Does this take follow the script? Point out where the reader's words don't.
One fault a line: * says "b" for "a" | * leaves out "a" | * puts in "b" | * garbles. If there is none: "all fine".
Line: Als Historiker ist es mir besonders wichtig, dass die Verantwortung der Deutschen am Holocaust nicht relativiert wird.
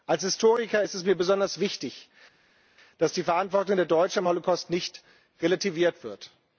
all fine